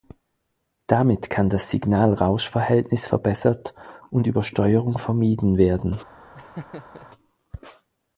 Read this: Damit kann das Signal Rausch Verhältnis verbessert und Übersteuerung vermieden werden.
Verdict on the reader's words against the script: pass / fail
pass